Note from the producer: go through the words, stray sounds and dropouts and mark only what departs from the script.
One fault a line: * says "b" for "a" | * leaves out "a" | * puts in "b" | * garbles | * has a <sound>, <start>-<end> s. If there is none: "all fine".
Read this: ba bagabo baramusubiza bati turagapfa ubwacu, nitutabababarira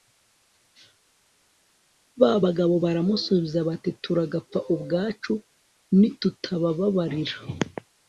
all fine